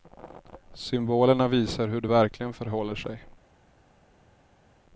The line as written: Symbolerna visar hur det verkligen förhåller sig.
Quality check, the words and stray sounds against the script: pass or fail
pass